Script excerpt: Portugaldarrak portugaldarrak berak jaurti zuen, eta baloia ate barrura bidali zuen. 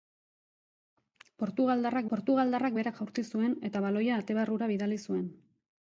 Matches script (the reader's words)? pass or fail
pass